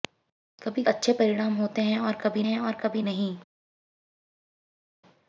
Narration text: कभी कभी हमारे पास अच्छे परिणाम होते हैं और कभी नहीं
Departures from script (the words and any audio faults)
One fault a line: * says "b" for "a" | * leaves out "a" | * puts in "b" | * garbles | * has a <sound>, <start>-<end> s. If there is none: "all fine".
* says "अच्छे परिणाम होते हैं और कभी" for "कभी हमारे पास अच्छे परिणाम होते"